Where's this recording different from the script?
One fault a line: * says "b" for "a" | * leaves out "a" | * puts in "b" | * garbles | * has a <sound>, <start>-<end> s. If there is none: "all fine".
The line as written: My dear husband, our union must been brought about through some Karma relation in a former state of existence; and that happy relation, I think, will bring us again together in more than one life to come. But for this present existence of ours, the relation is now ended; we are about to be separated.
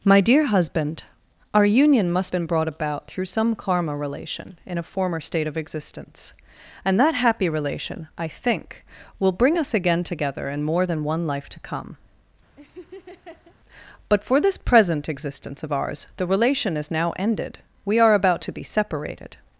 * has a laugh, 12.6-13.6 s